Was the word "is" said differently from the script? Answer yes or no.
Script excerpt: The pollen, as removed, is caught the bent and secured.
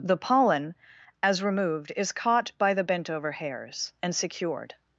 no